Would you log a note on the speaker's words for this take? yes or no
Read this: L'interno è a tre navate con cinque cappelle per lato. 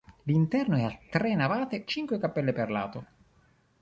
yes